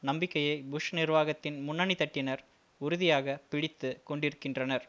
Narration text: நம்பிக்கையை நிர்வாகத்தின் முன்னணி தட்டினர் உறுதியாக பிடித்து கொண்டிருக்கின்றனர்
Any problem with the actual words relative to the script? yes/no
yes